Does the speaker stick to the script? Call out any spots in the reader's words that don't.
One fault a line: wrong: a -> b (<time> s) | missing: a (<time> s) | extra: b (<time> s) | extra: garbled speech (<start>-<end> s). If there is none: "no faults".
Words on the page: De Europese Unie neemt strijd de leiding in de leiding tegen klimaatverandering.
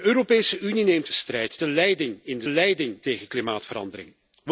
no faults